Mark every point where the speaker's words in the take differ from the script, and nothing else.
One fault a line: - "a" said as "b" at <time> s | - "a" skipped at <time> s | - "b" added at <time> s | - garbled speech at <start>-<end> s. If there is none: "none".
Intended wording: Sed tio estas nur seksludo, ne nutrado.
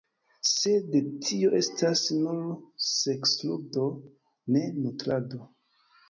none